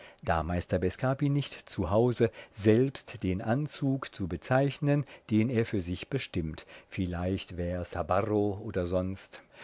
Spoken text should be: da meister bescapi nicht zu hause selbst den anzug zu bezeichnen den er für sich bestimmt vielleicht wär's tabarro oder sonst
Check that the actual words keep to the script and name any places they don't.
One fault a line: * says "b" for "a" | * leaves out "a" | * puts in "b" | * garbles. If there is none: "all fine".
all fine